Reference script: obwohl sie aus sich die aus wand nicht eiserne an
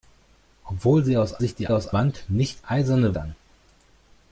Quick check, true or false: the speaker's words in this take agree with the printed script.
true